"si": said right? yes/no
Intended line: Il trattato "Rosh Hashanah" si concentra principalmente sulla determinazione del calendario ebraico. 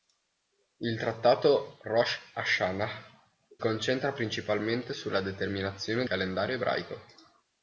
no